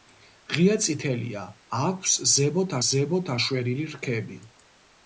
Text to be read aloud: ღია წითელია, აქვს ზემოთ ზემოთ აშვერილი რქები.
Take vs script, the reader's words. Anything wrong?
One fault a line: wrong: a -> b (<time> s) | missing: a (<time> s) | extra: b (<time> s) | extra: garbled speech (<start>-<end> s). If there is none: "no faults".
no faults